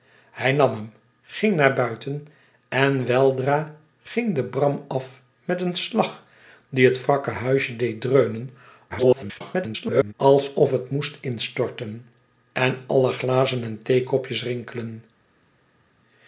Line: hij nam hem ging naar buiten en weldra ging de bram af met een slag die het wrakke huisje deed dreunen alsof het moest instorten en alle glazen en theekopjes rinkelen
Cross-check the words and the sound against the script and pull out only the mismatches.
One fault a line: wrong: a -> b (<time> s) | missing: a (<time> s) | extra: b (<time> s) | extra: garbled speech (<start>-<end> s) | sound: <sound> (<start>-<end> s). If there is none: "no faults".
extra: garbled speech (8.9-10.1 s)